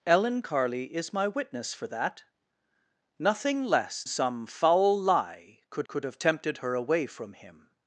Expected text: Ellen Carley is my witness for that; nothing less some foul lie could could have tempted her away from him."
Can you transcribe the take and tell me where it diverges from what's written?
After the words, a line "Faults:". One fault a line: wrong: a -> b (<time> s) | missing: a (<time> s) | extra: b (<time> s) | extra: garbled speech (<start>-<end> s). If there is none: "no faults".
Ellen Carley is my witness for that; nothing less some foul lie could could have tempted her away from him."
Faults:
no faults